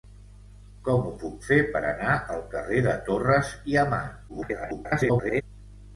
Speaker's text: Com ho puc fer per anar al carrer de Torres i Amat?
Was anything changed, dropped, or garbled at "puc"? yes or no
no